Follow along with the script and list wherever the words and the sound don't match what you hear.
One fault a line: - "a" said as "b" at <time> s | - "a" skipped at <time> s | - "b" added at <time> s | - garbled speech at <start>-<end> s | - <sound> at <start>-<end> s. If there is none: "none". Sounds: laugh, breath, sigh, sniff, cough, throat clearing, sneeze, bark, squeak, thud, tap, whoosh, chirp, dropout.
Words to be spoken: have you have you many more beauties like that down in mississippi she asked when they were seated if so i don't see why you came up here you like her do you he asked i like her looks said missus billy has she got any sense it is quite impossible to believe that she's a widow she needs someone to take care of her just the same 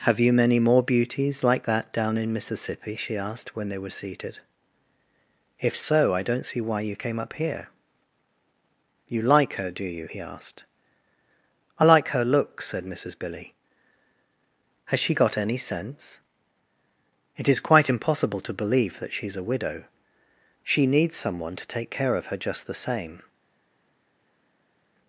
- "have you" skipped at 0.3 s